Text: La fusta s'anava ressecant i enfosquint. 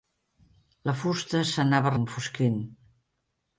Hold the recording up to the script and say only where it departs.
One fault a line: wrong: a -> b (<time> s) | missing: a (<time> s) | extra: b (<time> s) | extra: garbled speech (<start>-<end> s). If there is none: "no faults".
missing: ressecant (1.9 s)